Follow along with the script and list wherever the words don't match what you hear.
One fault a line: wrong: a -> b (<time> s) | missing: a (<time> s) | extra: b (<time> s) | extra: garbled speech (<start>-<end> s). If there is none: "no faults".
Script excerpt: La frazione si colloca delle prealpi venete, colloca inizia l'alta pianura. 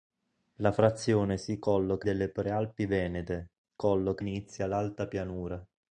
no faults